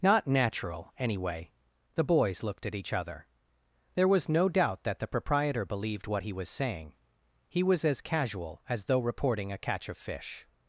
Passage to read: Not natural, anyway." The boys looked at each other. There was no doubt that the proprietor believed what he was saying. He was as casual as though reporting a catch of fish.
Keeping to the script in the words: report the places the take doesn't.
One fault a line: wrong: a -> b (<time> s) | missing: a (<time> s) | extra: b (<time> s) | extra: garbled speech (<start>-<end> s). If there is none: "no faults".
no faults